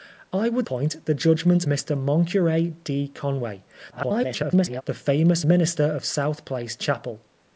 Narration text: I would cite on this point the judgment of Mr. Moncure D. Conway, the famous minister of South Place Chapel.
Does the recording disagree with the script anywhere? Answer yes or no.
yes